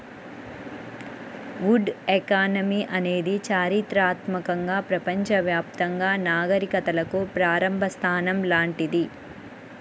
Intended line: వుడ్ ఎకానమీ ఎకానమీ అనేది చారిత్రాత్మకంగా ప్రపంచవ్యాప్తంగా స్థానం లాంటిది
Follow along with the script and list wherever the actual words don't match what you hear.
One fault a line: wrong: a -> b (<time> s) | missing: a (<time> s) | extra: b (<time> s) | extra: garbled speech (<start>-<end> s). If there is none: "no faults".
missing: ఎకానమీ (2.8 s)
extra: నాగరికతలకు ప్రారంభ (6.3 s)